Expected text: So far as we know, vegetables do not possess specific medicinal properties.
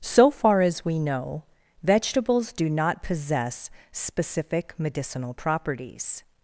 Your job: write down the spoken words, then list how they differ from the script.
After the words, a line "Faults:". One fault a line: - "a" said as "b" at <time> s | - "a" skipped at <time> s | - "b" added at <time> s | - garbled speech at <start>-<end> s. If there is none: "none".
So far as we know, vegetables do not possess specific medicinal properties.
Faults:
none